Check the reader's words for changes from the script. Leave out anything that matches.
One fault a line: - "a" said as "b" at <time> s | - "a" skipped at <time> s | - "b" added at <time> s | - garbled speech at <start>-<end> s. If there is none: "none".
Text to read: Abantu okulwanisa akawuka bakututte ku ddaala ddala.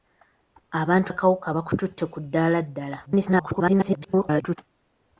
- "okulwanisa" skipped at 1.1 s
- garbled speech at 3.1-4.6 s